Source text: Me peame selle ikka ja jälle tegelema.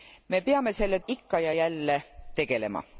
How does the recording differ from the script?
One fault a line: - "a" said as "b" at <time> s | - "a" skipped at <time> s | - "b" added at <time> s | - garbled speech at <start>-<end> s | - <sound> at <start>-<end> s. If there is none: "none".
none